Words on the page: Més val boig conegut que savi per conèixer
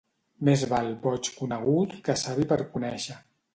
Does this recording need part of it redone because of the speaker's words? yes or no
no